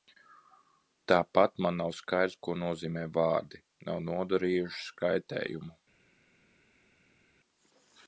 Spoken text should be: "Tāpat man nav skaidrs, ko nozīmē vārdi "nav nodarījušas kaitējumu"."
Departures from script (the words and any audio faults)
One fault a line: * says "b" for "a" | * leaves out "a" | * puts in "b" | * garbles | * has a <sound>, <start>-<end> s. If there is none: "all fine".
all fine